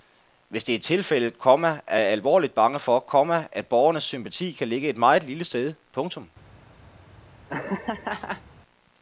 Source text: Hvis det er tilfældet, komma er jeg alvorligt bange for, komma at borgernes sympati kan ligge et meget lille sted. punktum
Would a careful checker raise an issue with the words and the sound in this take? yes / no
yes